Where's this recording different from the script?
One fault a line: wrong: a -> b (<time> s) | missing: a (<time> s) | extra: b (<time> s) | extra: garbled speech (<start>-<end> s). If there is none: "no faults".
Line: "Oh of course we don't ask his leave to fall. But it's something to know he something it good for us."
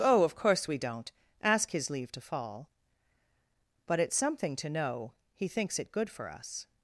wrong: something -> thinks (5.5 s)